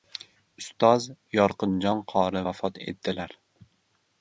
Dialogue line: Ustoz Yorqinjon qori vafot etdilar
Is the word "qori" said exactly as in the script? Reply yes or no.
yes